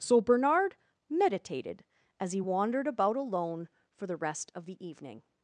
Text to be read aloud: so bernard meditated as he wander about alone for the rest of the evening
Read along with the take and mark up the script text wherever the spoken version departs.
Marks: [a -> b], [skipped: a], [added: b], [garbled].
so bernard meditated as he [wander -> wandered] about alone for the rest of the evening